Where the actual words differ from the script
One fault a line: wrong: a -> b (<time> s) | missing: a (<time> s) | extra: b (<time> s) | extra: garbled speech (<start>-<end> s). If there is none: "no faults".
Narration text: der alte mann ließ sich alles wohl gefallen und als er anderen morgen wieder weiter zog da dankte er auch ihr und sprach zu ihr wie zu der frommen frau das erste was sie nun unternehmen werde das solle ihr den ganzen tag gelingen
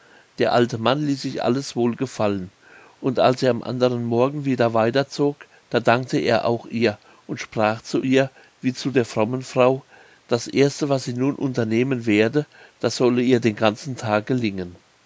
extra: am (3.5 s)